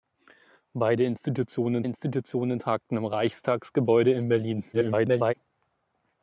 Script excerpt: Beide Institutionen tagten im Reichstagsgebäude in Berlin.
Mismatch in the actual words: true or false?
true